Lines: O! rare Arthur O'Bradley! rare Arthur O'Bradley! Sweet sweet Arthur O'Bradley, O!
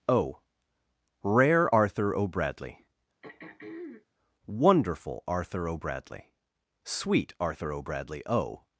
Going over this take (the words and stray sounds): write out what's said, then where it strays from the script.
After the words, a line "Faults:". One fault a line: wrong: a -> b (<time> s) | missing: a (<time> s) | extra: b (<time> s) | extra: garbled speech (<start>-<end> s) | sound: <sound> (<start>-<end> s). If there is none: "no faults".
O! rare Arthur O'Bradley! wonderful Arthur O'Bradley! Sweet Arthur O'Bradley, O!
Faults:
sound: throat clearing (3.2-4.1 s)
wrong: rare -> wonderful (4.4 s)
missing: sweet (7.3 s)